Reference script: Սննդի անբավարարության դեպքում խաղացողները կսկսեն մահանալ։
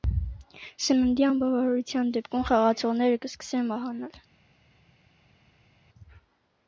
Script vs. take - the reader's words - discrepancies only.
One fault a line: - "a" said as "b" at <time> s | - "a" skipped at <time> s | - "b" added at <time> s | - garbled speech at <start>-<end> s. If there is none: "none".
none